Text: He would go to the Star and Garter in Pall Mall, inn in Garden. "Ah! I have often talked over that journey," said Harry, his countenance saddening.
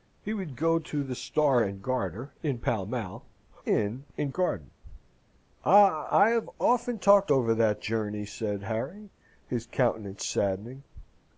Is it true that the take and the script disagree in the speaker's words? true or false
false